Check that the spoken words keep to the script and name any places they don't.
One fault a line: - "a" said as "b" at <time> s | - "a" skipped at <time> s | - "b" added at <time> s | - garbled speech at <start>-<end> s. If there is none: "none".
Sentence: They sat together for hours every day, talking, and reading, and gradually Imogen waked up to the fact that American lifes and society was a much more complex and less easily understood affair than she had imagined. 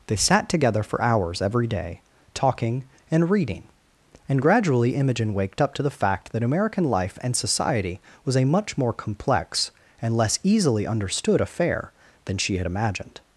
- "lifes" said as "life" at 6.8 s